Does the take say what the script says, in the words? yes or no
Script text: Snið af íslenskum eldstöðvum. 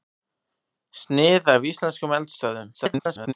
no